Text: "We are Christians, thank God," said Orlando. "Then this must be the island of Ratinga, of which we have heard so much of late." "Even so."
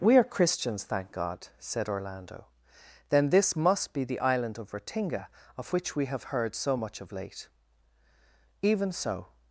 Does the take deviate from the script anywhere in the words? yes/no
no